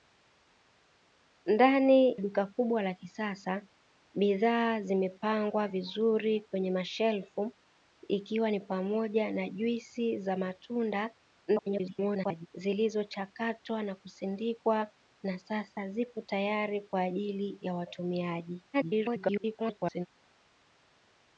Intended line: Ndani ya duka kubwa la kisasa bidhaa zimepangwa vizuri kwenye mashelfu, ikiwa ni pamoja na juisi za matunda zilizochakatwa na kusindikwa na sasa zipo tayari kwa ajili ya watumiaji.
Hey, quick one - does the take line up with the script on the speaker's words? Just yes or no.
no